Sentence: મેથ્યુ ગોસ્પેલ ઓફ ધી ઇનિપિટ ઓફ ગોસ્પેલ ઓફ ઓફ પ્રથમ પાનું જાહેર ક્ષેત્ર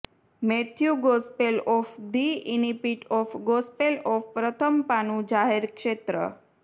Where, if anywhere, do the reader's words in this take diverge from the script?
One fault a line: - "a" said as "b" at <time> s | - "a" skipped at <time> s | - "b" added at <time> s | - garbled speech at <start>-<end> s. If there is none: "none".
- "ઓફ" skipped at 4.3 s